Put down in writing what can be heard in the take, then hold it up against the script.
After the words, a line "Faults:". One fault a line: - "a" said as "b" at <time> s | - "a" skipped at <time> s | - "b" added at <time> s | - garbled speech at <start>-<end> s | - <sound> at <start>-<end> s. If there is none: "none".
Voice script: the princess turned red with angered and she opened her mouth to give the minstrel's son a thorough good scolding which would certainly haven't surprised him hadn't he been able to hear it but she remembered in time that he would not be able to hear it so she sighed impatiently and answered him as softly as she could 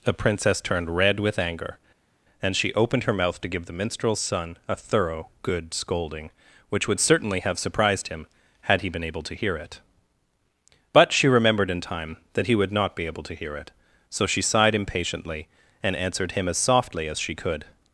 the princess turned red with anger and she opened her mouth to give the minstrel's son a thorough good scolding which would certainly have surprised him had he been able to hear it but she remembered in time that he would not be able to hear it so she sighed impatiently and answered him as softly as she could
Faults:
- "angered" said as "anger" at 1.4 s
- "haven't" said as "have" at 7.4 s
- "hadn't" said as "had" at 8.6 s